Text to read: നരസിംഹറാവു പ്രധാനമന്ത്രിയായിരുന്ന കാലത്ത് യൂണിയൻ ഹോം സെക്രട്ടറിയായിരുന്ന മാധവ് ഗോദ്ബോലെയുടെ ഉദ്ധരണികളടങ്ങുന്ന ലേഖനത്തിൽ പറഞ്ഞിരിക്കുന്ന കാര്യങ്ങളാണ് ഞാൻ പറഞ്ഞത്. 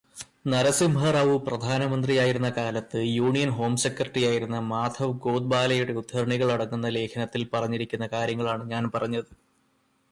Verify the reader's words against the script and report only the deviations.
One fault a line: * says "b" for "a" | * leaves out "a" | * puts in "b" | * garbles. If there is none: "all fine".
all fine